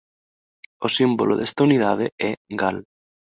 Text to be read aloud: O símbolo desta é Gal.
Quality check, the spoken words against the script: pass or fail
fail